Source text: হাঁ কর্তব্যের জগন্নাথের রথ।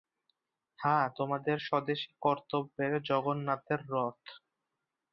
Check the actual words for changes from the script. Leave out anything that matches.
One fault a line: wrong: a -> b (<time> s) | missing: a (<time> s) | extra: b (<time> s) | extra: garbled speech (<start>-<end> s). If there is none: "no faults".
extra: তোমাদের স্বদেশী (1.2 s)